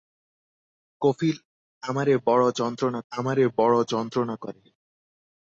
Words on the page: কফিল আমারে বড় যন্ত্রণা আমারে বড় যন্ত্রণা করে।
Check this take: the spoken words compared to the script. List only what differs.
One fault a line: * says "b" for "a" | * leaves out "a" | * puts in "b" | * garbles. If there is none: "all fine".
all fine